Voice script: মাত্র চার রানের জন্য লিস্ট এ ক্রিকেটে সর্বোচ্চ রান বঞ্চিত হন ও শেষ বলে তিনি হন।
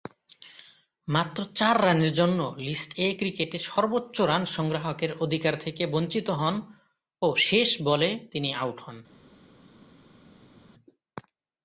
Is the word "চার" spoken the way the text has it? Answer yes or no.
yes